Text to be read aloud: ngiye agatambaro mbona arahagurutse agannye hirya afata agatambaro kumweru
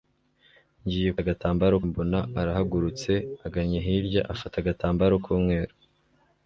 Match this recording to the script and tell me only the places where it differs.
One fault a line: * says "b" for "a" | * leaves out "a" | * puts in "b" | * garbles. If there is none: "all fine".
all fine